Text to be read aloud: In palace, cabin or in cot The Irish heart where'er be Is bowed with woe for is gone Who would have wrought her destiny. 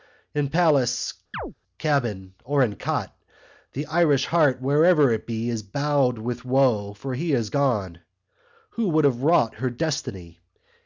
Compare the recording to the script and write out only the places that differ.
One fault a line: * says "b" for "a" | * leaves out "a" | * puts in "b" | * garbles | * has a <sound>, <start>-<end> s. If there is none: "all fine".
* has a chirp, 1.3-1.5 s
* puts in "it"
* puts in "he"